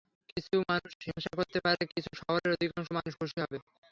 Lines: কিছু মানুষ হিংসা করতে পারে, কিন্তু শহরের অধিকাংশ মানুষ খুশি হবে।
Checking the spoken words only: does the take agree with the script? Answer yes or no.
yes